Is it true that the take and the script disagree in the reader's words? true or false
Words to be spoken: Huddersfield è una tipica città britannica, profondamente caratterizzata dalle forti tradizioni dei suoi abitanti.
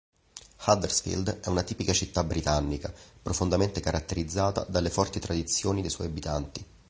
false